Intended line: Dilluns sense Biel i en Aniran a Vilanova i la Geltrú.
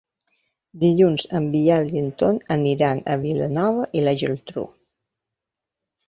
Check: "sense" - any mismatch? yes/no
yes